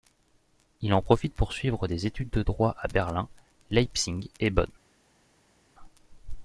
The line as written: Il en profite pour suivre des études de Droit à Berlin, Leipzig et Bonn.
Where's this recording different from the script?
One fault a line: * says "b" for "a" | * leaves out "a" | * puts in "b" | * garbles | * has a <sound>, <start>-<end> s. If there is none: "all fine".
all fine